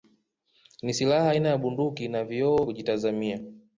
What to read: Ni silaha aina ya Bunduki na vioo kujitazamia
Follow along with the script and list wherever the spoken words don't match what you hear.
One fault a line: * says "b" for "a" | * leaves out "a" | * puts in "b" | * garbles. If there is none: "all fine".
all fine